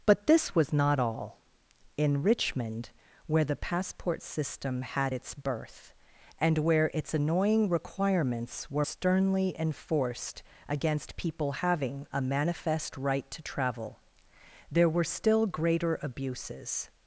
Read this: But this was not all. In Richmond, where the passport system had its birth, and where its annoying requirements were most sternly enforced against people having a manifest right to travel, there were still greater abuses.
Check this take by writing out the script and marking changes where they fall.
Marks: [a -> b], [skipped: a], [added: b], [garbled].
But this was not all. In Richmond, where the passport system had its birth, and where its annoying requirements were [skipped: most] sternly enforced against people having a manifest right to travel, there were still greater abuses.